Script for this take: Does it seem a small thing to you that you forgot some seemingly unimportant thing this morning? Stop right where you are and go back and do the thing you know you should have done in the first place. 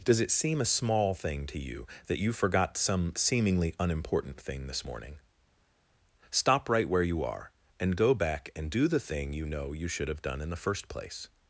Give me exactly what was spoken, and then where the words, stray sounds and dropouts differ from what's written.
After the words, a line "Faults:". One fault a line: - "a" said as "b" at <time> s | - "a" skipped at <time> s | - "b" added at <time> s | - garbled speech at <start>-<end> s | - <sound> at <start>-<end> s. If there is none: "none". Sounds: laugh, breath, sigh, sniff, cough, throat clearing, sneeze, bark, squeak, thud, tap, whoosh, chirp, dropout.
Does it seem a small thing to you that you forgot some seemingly unimportant thing this morning? Stop right where you are and go back and do the thing you know you should have done in the first place.
Faults:
none